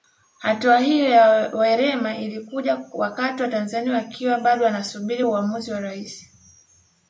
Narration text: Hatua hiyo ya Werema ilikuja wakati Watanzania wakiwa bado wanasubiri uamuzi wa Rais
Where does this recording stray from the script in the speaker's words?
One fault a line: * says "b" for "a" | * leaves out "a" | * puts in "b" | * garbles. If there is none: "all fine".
all fine